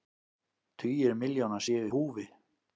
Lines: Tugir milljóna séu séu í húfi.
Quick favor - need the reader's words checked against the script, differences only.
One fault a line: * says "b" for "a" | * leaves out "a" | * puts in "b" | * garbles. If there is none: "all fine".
* leaves out "séu"